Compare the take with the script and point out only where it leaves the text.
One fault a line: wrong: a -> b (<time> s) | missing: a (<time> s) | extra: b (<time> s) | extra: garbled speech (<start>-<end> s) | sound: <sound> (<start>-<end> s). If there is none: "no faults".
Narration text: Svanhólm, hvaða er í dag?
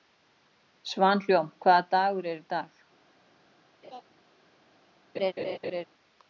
extra: dagur (1.9 s)
sound: laugh (3.8-4.0 s)
sound: laugh (5.1-5.8 s)